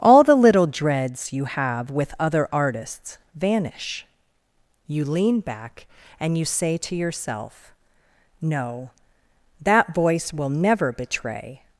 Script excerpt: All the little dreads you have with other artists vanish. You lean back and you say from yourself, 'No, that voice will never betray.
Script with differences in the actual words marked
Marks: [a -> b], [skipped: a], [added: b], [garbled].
All the little dreads you have with other artists vanish. You lean back and you say [from -> to] yourself, 'No, that voice will never betray.